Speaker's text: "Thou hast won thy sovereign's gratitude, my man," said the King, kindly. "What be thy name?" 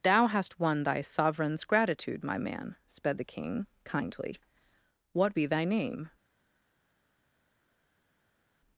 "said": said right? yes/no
no